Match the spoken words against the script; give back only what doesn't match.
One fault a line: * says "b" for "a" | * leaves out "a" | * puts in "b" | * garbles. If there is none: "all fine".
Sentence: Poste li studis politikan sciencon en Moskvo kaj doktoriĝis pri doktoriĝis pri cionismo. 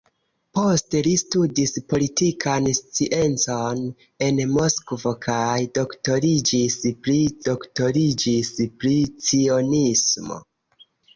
all fine